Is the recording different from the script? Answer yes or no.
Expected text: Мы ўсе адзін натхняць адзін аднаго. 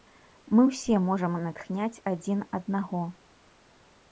yes